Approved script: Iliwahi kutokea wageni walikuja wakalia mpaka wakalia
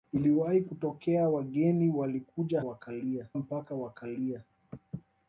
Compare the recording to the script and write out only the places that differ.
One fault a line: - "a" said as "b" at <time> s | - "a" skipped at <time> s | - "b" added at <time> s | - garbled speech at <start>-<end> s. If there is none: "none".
none